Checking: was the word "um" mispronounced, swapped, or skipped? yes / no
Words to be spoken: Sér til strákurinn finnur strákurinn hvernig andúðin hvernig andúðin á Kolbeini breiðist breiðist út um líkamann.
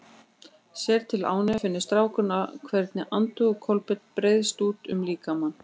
no